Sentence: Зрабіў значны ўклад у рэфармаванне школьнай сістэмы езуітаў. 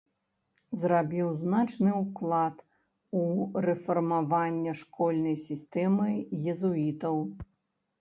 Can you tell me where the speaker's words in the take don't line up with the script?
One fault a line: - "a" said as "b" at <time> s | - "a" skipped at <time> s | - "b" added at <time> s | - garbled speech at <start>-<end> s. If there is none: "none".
none